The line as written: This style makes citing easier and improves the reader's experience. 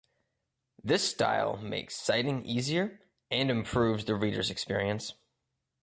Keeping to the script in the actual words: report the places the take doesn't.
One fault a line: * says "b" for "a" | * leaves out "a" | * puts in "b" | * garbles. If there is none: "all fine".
all fine